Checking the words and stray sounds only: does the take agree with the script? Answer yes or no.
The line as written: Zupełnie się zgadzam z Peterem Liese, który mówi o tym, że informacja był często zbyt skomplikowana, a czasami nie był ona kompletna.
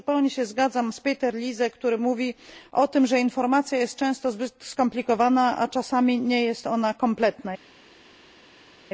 no